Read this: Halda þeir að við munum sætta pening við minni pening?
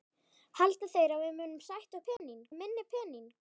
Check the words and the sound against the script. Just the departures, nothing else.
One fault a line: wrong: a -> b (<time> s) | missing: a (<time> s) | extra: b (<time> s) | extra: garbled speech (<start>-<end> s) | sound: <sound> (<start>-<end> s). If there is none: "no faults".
sound: dropout (2.2-2.2 s)